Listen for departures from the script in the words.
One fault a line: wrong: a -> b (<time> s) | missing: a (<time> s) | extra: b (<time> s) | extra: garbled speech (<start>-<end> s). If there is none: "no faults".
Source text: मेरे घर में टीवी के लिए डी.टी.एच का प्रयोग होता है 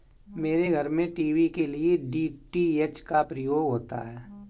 no faults